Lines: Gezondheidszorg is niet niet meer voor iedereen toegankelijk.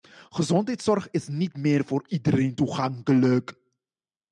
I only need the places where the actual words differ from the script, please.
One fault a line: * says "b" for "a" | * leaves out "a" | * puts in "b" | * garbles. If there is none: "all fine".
* leaves out "niet"